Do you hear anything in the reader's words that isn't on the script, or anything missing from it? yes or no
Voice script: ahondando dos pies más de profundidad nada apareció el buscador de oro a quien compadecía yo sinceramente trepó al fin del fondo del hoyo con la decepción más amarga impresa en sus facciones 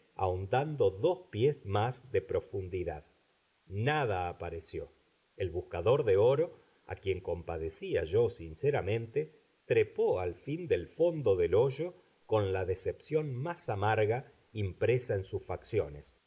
no